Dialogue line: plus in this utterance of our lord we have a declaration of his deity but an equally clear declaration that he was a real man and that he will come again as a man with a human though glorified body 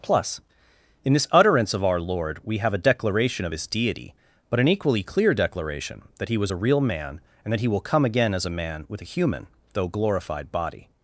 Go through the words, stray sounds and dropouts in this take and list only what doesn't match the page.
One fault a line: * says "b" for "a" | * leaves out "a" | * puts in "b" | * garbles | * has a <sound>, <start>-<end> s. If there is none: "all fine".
all fine